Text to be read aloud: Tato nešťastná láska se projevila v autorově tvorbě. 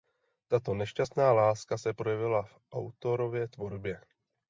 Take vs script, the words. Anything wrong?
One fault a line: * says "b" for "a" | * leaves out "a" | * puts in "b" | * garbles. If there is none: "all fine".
all fine